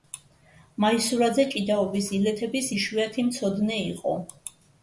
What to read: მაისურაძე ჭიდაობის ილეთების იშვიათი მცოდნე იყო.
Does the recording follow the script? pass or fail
pass